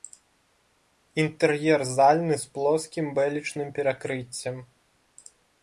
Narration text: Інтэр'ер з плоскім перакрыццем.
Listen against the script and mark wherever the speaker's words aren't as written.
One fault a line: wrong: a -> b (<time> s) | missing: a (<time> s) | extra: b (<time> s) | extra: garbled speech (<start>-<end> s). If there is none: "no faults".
extra: зальны (2.0 s)
extra: бэлечным (3.2 s)